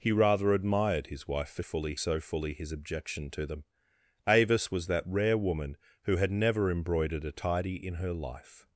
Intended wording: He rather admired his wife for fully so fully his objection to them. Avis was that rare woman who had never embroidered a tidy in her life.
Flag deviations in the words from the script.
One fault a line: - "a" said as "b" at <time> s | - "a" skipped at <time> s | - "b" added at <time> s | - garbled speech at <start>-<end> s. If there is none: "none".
none